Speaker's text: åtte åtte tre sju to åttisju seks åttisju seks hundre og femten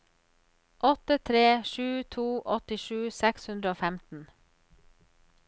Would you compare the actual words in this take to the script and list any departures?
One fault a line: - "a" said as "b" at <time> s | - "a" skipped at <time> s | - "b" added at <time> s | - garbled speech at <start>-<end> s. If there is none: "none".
- "åtte" skipped at 1.2 s
- "åttisju seks" skipped at 3.5 s